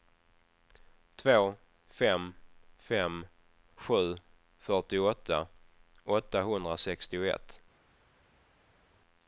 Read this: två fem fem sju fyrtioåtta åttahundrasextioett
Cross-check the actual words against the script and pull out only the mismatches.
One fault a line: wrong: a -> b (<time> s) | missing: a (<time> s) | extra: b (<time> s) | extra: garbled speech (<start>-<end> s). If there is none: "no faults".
no faults